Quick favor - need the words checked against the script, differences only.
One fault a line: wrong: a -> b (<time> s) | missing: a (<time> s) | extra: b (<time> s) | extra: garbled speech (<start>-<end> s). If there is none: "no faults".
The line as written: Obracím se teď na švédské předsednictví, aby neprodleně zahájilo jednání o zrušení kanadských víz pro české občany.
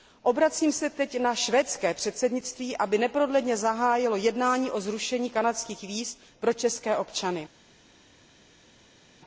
no faults